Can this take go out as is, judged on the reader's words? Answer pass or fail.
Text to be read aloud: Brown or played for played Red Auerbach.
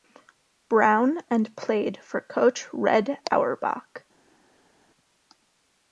fail